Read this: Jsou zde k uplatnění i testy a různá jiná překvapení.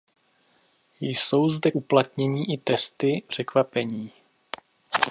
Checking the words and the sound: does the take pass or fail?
fail